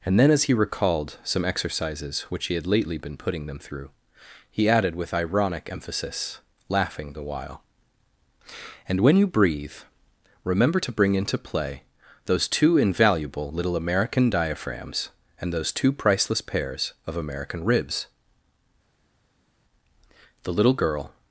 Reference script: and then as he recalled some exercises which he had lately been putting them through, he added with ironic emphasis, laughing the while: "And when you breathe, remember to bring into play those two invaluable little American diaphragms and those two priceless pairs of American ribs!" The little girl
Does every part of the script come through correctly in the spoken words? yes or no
yes